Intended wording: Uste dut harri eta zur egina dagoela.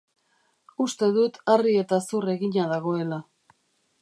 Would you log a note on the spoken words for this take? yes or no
no